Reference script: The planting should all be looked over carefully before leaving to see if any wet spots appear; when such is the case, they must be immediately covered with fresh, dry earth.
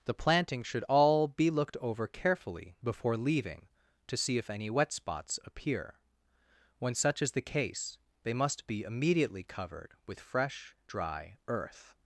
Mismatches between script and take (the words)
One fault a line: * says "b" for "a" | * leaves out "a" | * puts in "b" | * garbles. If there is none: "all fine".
all fine